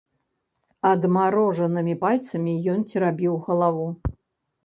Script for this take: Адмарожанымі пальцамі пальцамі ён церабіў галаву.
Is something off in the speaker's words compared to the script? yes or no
yes